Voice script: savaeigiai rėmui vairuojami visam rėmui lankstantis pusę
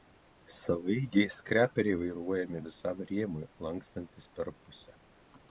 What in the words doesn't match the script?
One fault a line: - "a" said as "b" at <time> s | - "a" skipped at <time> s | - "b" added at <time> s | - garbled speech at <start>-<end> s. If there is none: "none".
- "rėmui" said as "skreperiai" at 1.4 s
- "per" added at 4.4 s